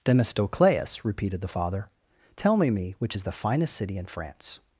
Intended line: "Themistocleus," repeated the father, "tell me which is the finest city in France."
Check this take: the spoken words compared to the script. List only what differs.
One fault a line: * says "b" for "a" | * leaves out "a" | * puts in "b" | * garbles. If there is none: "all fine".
* puts in "me"